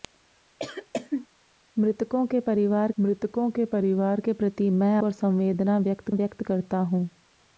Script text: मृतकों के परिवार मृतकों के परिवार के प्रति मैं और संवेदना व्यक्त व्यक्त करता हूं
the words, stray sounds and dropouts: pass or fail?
fail